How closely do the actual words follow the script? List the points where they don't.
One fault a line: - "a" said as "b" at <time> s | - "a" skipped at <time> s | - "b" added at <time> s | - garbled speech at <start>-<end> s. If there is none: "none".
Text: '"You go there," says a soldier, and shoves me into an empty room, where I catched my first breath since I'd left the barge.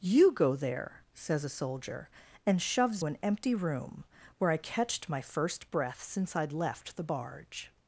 - "me into" skipped at 3.0 s